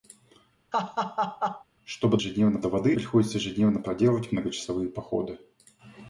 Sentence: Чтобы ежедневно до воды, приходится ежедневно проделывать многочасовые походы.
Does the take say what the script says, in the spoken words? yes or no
yes